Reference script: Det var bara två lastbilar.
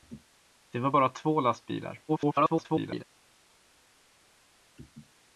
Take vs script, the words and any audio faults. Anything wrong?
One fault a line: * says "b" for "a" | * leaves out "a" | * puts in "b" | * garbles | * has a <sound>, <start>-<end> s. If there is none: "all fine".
* garbles